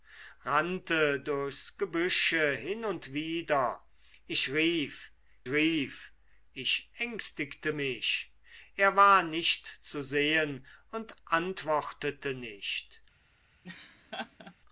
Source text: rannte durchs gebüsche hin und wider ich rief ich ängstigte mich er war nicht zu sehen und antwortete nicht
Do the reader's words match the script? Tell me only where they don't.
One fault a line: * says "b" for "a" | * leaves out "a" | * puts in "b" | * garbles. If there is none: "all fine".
* puts in "rief"